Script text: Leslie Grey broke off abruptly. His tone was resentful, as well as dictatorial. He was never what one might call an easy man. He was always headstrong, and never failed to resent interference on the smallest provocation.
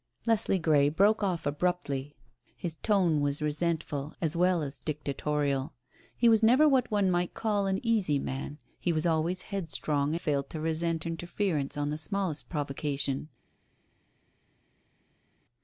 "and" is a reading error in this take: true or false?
true